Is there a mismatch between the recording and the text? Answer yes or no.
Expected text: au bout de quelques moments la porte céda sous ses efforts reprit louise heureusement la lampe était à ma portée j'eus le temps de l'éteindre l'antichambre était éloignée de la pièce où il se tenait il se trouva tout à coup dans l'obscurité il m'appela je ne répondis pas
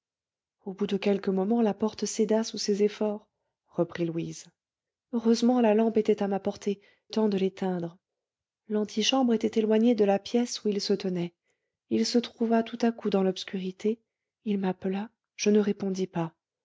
yes